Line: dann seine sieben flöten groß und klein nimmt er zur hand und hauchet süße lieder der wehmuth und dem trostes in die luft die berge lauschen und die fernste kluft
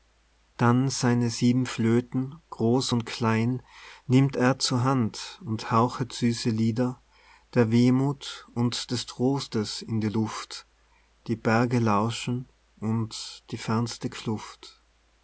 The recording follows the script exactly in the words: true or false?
false